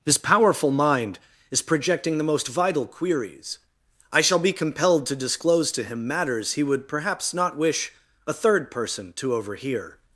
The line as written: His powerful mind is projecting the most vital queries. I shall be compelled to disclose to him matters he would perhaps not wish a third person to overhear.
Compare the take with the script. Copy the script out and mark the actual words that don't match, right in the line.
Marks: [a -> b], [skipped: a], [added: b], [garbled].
His powerful mind is projecting the most vital queries. I shall be compelled to disclose to him matters he would perhaps not wish a third person to overhear.